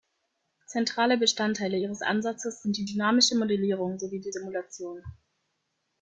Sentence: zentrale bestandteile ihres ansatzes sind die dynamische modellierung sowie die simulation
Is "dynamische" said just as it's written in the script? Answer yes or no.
yes